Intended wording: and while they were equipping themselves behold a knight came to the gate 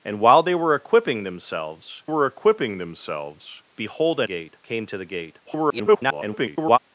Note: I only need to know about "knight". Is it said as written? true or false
false